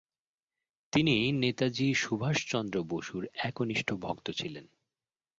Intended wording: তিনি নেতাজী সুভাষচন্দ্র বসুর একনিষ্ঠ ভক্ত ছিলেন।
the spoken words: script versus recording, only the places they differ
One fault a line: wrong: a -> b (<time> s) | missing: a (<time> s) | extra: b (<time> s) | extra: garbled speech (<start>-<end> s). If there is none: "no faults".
no faults